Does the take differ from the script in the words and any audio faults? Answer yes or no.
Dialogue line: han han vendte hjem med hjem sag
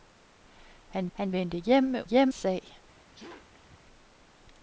yes